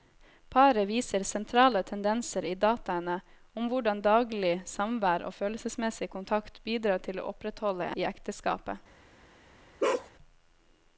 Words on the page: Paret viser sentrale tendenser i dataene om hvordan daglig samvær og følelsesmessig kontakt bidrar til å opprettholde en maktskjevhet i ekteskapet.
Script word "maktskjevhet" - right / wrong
wrong